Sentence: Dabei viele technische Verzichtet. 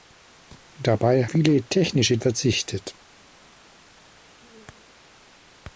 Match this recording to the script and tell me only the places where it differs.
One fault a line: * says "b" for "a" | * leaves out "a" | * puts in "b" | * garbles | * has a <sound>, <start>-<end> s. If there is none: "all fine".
all fine